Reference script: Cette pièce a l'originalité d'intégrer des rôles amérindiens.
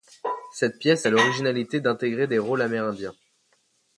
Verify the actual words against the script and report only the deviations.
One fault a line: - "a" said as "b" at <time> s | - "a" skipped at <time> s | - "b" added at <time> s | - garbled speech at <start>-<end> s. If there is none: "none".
none